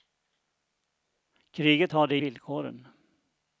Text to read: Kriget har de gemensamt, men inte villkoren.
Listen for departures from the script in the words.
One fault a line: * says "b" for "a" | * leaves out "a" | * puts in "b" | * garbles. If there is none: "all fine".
* leaves out "gemensamt men inte"